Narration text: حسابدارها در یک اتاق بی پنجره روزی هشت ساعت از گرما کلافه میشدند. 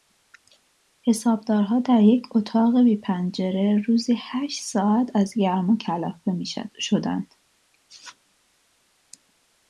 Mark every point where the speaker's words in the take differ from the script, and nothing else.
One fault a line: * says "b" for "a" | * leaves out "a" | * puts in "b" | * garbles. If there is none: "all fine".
all fine